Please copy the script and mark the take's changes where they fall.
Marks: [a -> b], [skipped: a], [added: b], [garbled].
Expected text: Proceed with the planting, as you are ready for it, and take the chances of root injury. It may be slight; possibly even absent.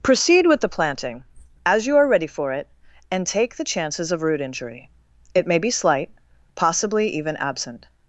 Proceed with the planting, as you are ready for it, and take the chances of root injury. It may be slight; possibly even absent.